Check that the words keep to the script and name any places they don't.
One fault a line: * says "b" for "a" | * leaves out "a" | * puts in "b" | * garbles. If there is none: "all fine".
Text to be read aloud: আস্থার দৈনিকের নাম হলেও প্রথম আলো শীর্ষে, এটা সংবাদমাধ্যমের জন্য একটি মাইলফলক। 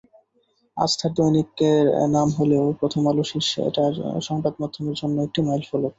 all fine